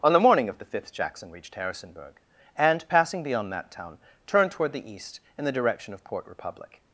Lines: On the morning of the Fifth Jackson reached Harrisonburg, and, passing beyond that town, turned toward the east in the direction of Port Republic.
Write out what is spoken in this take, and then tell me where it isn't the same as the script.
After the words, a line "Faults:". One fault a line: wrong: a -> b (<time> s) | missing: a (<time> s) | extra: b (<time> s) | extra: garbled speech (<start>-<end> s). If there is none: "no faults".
On the morning of the Fifth Jackson reached Harrisonburg, and, passing beyond that town, turned toward the east in the direction of Port Republic.
Faults:
no faults